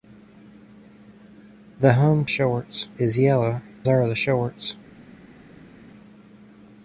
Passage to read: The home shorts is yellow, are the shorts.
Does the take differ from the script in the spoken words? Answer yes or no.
no